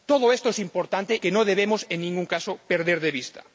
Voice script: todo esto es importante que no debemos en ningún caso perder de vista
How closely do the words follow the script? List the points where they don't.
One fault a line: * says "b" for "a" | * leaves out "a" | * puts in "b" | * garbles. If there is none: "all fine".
all fine